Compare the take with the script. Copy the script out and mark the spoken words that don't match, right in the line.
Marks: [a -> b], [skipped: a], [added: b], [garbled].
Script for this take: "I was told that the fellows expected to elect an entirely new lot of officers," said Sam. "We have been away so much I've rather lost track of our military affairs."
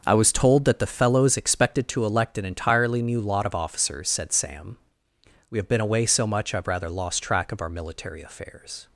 "I was told that the fellows expected to elect an entirely new lot of officers," said Sam. "We have been away so much I've rather lost track of our military affairs."